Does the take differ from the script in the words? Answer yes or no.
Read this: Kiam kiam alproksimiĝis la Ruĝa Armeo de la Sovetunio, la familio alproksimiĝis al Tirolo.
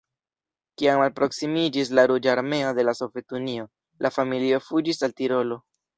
yes